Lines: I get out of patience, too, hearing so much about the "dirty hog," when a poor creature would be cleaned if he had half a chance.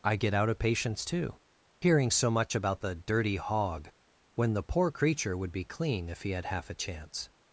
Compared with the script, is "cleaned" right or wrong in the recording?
wrong